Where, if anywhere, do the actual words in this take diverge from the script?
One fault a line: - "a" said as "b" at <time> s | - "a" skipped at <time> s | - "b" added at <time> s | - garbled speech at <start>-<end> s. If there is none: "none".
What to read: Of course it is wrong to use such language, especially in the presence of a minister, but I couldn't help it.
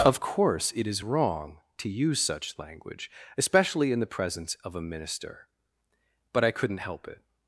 none